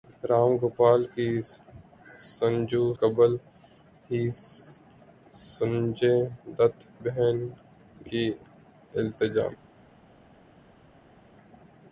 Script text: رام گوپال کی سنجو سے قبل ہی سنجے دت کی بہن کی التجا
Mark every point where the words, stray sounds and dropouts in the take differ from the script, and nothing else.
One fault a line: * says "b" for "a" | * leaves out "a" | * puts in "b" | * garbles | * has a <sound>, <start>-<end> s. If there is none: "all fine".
* leaves out "سے"
* leaves out "کی"